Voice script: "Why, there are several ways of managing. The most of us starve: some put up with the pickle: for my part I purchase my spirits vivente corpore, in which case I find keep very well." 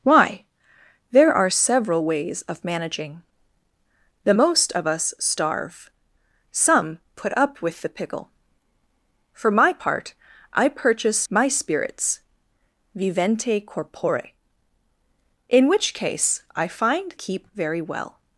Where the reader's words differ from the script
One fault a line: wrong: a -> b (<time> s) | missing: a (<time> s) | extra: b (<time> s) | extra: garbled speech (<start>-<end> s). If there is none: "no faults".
no faults